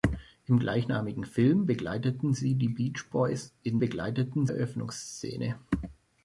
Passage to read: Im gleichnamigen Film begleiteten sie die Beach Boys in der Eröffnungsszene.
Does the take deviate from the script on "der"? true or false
true